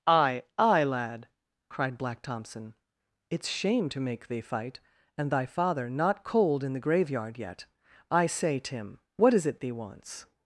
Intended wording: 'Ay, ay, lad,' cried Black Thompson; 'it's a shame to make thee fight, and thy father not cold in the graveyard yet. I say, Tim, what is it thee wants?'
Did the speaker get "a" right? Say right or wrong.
wrong